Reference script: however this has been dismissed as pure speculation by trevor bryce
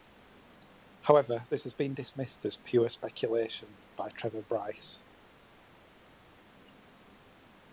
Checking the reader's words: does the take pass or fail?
pass